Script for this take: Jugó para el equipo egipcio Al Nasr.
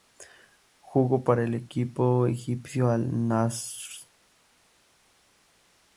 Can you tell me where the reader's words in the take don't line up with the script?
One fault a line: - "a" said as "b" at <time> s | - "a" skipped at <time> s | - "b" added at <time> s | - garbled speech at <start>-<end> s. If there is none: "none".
none